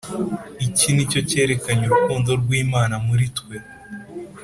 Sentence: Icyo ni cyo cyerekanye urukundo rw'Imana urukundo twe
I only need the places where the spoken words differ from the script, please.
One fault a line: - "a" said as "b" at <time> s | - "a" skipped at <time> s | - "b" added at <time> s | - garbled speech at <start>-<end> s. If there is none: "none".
- "Icyo" said as "Iki" at 0.7 s
- "urukundo" said as "muri" at 3.1 s